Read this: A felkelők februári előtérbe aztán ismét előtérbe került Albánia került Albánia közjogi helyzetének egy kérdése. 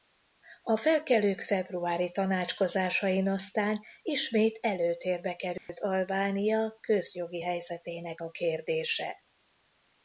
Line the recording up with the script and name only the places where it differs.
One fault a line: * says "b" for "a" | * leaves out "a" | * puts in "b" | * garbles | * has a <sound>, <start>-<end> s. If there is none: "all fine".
* says "tanácskozásain" for "előtérbe"
* has a dropout, 5.6-5.7 s
* leaves out "került Albánia"
* says "a" for "egy"